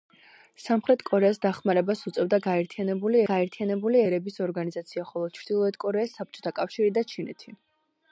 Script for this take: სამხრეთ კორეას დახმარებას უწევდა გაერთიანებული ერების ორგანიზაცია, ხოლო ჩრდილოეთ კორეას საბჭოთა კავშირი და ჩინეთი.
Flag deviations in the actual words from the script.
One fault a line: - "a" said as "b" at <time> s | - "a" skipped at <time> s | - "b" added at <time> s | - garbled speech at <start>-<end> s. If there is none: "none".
- "გაერთიანებული" added at 3.3 s